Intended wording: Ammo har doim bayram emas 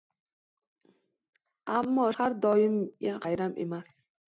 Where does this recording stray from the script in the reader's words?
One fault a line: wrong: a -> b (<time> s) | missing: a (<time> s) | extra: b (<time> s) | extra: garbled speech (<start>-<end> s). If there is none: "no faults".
no faults